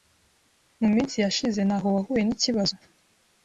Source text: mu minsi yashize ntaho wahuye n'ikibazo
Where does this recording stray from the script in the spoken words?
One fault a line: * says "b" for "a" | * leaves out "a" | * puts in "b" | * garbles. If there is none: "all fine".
all fine